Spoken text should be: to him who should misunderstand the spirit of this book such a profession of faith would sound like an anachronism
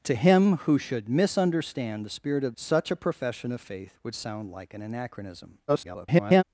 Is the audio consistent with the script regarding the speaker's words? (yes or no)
no